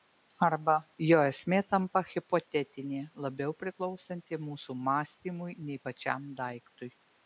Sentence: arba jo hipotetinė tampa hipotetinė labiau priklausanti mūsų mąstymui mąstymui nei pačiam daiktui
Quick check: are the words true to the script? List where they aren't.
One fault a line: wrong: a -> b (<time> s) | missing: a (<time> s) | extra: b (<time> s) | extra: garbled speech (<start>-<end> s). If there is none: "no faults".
wrong: hipotetinė -> esmė (1.3 s)
missing: mąstymui (5.6 s)